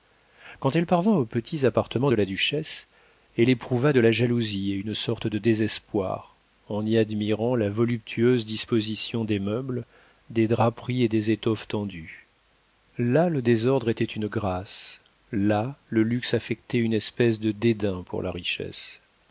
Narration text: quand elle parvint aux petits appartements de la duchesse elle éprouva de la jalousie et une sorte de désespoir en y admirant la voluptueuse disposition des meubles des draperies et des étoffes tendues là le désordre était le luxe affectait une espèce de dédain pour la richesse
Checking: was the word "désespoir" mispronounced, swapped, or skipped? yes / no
no